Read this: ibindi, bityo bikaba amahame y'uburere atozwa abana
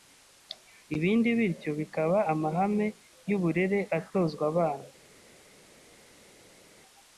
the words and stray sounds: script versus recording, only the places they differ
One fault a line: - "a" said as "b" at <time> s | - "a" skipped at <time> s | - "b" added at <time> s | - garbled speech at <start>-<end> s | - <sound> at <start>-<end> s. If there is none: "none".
none